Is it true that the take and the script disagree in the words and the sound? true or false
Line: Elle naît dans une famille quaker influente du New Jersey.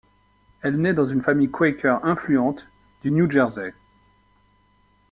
false